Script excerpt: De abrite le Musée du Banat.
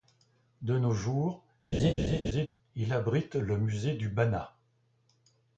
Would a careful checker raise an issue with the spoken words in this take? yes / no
yes